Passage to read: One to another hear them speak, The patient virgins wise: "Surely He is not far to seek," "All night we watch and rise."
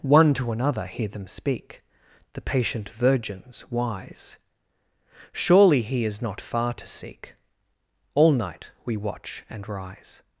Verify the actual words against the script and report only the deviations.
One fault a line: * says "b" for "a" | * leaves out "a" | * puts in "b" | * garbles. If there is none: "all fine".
all fine